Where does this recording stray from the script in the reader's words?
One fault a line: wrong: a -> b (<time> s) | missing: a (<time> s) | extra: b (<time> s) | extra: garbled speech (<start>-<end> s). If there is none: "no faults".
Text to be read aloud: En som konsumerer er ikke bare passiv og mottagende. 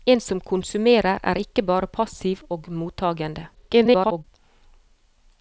extra: garbled speech (3.5-4.2 s)